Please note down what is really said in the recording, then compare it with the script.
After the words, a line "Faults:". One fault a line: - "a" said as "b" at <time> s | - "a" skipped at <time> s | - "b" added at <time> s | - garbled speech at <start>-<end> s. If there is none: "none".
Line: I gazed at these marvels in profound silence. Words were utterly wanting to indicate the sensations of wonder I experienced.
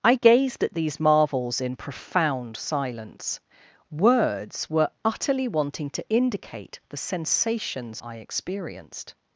I gazed at these marvels in profound silence. Words were utterly wanting to indicate the sensations I experienced.
Faults:
- "of wonder" skipped at 8.0 s